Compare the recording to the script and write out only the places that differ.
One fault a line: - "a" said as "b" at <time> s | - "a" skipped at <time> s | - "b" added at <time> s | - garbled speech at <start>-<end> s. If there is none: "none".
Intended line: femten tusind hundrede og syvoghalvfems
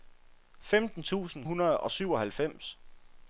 none